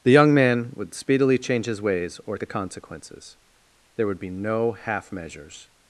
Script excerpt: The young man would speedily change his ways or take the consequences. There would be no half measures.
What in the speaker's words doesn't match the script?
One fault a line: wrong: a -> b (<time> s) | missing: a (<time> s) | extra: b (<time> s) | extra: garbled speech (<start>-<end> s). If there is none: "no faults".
missing: take (2.4 s)